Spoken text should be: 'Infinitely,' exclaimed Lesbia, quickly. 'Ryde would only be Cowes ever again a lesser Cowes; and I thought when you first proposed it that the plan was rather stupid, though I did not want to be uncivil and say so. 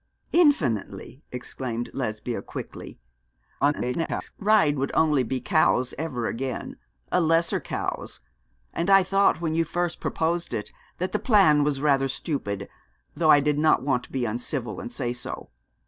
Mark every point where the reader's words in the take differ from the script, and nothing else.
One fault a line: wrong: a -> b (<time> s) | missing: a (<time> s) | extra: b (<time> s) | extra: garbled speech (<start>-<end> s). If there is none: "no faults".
extra: garbled speech (3.6-4.3 s)